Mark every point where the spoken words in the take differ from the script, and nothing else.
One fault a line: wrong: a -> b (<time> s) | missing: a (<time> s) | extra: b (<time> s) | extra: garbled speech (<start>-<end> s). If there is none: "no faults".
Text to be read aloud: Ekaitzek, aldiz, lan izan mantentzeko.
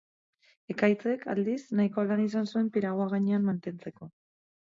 extra: nahiko (1.8 s)
extra: zuen piragua gainean (2.5 s)